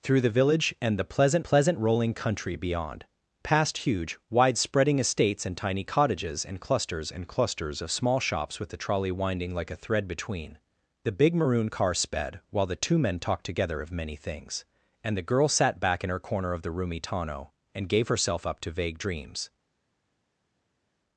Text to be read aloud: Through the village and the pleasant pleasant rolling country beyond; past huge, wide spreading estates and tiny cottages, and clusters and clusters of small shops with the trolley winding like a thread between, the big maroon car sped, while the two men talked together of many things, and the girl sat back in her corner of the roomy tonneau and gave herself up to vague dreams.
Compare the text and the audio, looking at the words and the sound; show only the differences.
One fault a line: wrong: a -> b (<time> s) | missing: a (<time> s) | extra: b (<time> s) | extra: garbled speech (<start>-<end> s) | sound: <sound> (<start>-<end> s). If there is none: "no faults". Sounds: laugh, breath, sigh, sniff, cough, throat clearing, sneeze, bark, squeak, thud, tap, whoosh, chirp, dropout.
no faults